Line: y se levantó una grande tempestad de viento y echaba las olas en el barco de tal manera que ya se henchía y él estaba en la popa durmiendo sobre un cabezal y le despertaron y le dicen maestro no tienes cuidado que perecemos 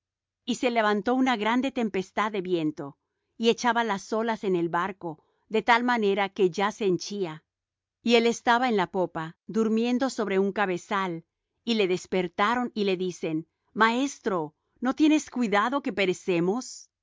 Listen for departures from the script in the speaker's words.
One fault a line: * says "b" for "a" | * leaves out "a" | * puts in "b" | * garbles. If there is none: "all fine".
all fine